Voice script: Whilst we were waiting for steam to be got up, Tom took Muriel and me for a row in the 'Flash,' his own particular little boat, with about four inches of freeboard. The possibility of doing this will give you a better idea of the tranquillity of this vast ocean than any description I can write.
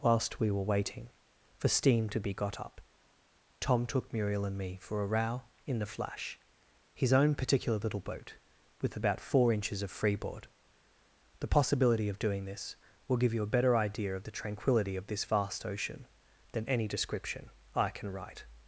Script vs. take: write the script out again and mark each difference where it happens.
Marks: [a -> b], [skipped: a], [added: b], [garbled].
Whilst we were waiting for steam to be got up, Tom took Muriel and me for a row in the 'Flash,' his own particular little boat, with about four inches of freeboard. The possibility of doing this will give you a better idea of the tranquillity of this vast ocean than any description I can write.